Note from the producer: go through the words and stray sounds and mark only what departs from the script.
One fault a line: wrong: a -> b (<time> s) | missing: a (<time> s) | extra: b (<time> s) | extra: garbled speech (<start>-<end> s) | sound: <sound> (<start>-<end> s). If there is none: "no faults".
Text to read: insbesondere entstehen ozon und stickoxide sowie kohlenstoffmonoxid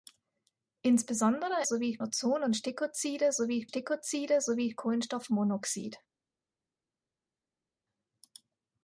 wrong: entstehen -> sowie (1.6 s)
extra: stickoxide sowie (3.7 s)